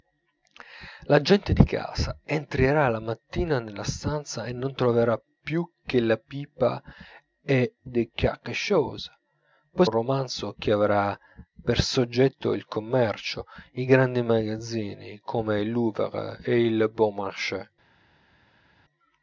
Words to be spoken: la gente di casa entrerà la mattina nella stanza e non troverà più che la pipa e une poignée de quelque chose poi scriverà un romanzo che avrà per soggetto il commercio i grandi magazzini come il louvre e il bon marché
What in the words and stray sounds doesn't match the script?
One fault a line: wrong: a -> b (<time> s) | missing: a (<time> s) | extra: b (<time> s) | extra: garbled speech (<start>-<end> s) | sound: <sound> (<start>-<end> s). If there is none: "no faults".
missing: une poignée (7.8 s)
missing: scriverà (9.9 s)